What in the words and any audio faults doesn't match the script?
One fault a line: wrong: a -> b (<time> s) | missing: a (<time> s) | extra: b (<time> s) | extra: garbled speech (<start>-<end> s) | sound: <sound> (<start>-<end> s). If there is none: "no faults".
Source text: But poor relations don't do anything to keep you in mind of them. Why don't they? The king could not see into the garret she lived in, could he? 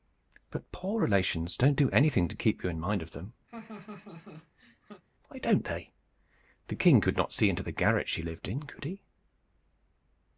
sound: laugh (3.5-5.0 s)